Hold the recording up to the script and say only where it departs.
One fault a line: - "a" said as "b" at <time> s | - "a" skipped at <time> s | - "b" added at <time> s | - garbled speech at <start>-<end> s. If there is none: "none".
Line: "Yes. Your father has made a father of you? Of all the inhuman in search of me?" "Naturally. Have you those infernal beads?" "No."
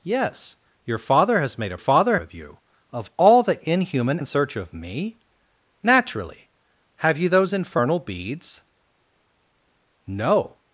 none